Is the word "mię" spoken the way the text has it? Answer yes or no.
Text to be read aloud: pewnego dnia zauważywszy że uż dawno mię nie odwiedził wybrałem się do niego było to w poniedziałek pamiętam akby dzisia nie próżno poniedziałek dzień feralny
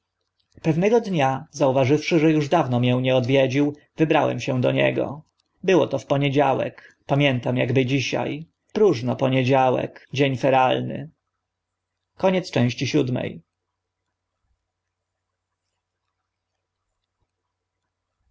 yes